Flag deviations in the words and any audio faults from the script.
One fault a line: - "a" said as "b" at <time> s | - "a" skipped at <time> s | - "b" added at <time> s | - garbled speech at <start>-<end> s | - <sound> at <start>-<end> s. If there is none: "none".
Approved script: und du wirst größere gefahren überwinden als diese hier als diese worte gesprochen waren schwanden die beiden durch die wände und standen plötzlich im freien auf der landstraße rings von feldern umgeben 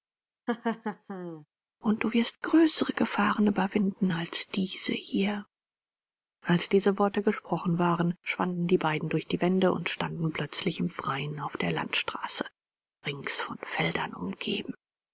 - laugh at 0.5-1.5 s